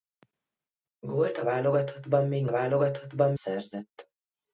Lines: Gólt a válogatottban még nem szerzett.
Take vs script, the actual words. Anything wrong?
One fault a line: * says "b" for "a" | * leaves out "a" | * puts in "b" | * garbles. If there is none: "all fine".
* says "válogatottban" for "nem"